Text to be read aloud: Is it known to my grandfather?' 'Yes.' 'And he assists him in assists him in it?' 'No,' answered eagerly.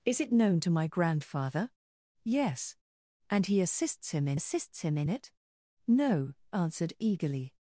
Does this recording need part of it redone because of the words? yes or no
no